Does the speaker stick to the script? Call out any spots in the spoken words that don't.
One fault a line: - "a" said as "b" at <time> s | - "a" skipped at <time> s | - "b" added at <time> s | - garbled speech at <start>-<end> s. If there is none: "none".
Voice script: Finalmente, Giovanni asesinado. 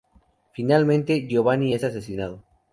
- "es" added at 1.7 s